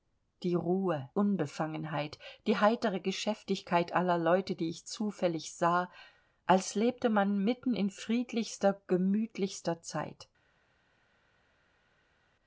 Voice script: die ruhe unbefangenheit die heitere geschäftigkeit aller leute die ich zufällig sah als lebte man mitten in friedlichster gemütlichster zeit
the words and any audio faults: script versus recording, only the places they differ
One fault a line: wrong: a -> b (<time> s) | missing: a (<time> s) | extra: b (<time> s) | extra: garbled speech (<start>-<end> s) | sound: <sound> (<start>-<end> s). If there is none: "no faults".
no faults